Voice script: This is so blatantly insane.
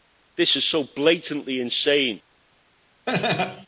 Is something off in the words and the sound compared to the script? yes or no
yes